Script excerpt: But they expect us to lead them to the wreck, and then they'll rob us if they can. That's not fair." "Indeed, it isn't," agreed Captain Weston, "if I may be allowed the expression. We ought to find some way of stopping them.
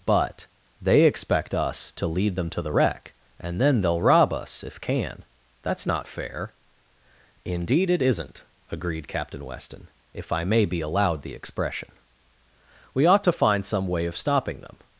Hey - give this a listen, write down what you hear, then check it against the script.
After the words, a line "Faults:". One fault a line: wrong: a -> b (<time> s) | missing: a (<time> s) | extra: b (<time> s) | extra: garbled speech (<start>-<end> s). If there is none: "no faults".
But they expect us to lead them to the wreck, and then they'll rob us if can. That's not fair." "Indeed, it isn't," agreed Captain Weston, "if I may be allowed the expression. We ought to find some way of stopping them.
Faults:
missing: they (4.8 s)